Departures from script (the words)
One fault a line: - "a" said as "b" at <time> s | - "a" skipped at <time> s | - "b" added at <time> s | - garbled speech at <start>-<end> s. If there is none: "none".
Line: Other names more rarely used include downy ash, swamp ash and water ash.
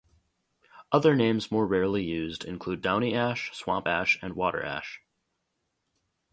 none